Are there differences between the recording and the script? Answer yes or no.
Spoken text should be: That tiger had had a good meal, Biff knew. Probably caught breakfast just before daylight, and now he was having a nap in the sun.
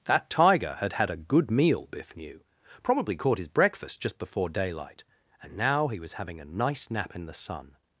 yes